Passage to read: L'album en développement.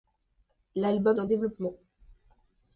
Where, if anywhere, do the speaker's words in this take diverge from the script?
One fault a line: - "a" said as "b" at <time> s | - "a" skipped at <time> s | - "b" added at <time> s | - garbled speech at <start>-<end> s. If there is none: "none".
none